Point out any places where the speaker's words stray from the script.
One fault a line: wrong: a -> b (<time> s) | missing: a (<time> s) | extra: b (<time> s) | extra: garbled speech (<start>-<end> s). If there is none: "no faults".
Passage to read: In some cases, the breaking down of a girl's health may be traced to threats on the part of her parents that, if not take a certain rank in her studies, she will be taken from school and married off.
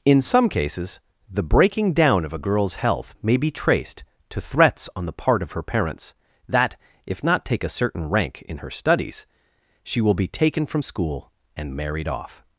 no faults